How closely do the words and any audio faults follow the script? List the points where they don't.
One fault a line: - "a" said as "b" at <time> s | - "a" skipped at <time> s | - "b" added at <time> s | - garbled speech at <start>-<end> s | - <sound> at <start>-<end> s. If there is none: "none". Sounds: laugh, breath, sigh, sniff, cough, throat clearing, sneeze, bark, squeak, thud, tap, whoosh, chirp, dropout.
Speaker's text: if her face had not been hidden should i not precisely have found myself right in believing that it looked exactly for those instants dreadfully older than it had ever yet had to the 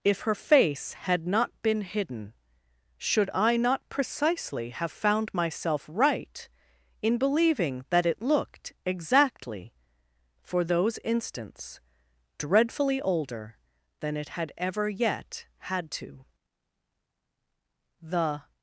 none